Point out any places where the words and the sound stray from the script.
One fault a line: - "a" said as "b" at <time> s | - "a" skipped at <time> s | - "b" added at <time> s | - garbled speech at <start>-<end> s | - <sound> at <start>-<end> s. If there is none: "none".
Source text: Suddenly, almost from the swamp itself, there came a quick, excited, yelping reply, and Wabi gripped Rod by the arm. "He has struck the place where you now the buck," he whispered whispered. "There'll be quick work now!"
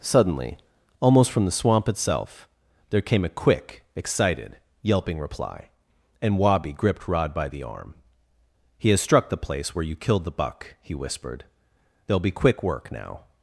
- "now" said as "killed" at 9.9 s
- "whispered" skipped at 11.4 s